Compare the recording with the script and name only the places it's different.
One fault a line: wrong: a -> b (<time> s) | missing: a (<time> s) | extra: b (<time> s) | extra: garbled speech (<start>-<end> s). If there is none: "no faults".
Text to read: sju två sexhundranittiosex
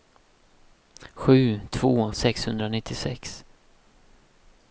no faults